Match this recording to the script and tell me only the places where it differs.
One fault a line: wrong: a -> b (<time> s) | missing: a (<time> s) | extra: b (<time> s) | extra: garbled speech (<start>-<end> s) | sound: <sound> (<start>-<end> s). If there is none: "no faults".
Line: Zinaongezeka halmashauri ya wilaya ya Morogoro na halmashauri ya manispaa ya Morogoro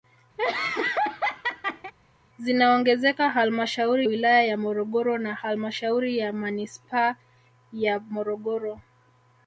sound: laugh (0.4-1.9 s)
missing: ya (4.1 s)